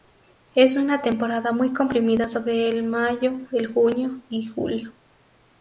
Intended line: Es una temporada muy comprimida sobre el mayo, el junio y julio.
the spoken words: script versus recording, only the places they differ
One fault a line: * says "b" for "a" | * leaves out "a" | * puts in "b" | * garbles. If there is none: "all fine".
all fine